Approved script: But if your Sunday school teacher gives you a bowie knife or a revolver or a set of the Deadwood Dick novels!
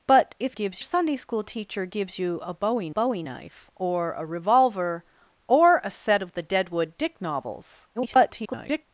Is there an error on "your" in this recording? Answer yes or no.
yes